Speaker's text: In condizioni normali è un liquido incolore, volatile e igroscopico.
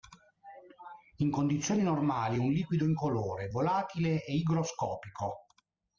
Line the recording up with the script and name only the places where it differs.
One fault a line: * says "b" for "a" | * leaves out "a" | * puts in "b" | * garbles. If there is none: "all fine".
all fine